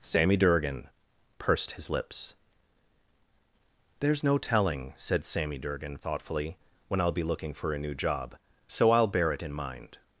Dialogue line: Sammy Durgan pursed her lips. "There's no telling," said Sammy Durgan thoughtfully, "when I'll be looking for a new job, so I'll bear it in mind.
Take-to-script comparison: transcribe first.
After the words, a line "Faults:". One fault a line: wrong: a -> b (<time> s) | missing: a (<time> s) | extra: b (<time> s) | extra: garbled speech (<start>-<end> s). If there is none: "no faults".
Sammy Durgan pursed his lips. "There's no telling," said Sammy Durgan thoughtfully, "when I'll be looking for a new job, so I'll bear it in mind.
Faults:
wrong: her -> his (1.7 s)